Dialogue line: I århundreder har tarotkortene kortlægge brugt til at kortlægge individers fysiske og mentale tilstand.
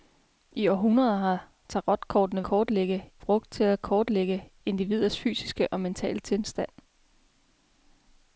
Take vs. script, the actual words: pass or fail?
pass